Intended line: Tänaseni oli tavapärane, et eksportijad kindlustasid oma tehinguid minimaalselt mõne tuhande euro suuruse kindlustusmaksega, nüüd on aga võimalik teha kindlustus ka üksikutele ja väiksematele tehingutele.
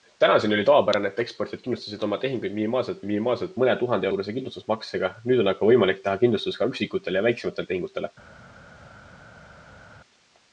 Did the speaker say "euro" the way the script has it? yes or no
no